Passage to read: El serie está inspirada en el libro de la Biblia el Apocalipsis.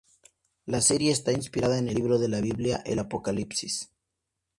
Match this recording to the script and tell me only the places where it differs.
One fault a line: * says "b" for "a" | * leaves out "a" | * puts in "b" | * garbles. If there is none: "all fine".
* says "La" for "El"